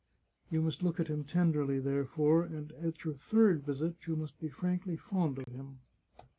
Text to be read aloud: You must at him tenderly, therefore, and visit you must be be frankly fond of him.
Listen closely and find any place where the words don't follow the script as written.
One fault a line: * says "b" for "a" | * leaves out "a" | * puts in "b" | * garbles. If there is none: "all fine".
* puts in "look"
* puts in "at your third"
* leaves out "be"